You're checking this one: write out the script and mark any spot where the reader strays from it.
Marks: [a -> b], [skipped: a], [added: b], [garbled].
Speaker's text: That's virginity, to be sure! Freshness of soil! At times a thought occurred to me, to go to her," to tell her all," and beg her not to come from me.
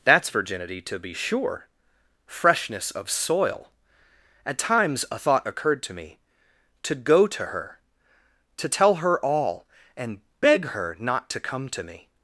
That's virginity, to be sure! Freshness of soil! At times a thought occurred to me, to go to her," to tell her all," and beg her not to come [from -> to] me.